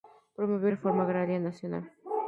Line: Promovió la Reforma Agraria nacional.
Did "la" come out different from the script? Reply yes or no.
yes